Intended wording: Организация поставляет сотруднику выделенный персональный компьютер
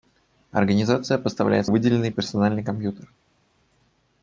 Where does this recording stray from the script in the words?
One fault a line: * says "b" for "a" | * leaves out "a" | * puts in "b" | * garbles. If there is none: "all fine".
* leaves out "сотруднику"